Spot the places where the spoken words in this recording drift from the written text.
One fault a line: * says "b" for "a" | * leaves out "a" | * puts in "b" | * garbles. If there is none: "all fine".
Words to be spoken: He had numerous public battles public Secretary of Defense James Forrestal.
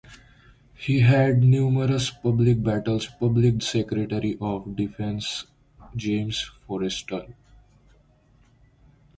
all fine